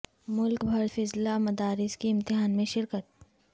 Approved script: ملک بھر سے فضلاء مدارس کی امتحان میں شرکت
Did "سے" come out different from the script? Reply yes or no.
yes